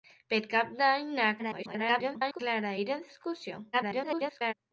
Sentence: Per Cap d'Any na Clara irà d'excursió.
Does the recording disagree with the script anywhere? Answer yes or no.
yes